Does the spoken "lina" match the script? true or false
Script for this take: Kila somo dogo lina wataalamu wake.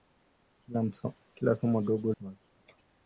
false